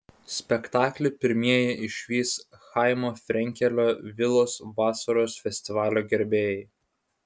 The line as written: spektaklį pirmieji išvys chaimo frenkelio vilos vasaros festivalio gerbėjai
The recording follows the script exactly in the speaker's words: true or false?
true